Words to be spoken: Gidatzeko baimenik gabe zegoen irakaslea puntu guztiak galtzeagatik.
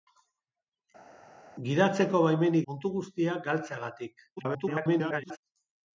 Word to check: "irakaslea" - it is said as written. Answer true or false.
false